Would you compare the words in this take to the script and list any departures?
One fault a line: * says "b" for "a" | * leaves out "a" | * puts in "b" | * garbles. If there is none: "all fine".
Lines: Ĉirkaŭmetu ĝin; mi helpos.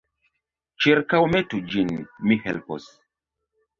all fine